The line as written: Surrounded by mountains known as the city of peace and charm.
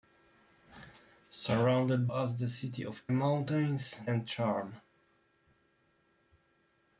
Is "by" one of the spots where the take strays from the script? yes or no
yes